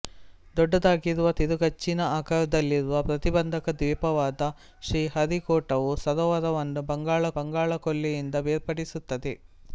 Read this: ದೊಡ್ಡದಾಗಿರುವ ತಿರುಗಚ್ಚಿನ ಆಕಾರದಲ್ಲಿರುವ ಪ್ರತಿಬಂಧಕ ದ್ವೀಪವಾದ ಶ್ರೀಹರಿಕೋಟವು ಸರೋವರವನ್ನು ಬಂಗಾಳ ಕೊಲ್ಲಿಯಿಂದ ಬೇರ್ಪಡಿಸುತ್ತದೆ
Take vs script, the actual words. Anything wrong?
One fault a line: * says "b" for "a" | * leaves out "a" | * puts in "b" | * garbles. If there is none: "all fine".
* puts in "ಬಂಗಾಳ"